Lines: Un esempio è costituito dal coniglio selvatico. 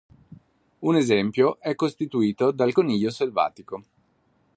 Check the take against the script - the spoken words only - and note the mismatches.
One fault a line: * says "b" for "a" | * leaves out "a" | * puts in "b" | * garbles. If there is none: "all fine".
all fine